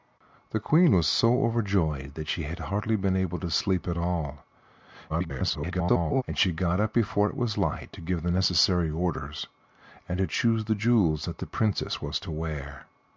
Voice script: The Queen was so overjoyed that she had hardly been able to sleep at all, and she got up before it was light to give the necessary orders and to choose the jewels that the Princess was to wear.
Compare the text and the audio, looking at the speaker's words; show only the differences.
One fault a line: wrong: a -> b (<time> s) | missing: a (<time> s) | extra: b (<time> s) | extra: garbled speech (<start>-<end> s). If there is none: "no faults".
extra: garbled speech (5.1-6.2 s)